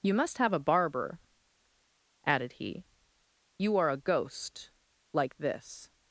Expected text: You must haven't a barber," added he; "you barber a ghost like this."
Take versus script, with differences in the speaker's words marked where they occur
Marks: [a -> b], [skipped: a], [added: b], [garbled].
You must [haven't -> have] a barber," added he; "you [barber -> are] a ghost like this."